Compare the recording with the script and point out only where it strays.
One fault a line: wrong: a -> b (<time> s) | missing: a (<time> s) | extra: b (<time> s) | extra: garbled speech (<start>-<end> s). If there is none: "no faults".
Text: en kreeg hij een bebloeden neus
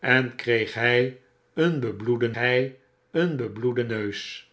extra: hij een bebloeden (2.3 s)